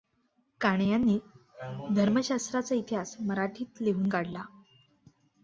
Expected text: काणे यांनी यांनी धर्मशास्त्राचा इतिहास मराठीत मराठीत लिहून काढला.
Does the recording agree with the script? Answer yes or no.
no